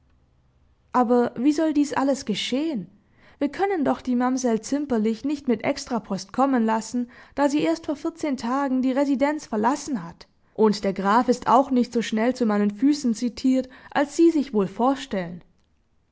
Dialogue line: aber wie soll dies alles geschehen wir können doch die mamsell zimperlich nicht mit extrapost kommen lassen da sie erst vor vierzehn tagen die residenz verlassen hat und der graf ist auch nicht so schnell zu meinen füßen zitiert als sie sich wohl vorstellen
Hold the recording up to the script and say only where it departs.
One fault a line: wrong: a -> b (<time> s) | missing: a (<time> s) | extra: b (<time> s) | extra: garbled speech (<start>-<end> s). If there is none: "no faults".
no faults